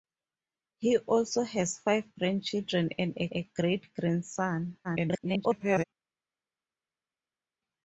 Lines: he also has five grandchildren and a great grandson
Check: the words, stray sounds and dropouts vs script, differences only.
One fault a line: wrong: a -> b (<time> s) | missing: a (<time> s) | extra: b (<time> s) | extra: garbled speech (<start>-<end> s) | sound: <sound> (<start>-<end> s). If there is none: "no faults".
extra: a (3.3 s)
extra: garbled speech (4.8-5.8 s)